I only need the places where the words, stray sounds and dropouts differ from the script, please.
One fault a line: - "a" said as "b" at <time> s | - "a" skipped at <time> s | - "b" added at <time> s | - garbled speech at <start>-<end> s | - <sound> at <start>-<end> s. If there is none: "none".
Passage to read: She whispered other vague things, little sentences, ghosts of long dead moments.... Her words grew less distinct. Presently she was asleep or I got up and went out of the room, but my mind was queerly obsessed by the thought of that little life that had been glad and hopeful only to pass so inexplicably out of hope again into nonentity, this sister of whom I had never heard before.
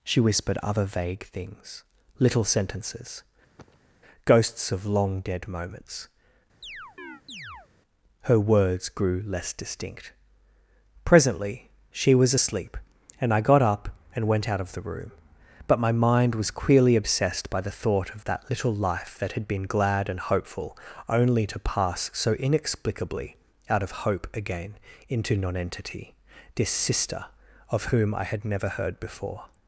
- cough at 3.6-3.9 s
- chirp at 6.6-7.7 s
- "or" said as "and" at 13.2 s